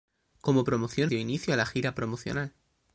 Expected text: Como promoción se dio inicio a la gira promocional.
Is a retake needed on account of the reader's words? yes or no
yes